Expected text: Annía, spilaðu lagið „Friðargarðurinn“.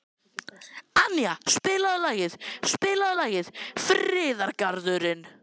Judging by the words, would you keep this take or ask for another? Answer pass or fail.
fail